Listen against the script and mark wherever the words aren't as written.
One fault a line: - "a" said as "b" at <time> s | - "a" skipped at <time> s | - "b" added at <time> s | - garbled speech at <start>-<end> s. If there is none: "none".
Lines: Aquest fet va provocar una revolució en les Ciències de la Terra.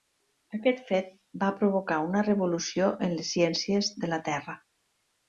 none